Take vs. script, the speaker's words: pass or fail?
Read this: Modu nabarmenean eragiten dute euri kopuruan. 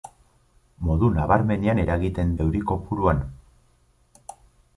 fail